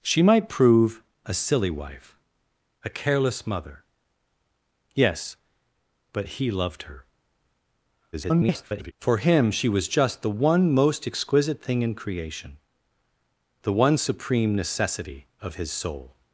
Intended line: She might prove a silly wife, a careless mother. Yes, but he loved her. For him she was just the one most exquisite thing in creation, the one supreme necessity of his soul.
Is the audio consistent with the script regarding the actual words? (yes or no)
no